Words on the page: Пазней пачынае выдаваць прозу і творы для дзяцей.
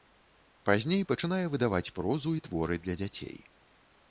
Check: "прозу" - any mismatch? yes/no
no